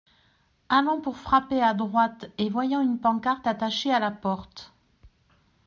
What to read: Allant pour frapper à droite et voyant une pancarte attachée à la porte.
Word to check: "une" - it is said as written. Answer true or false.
true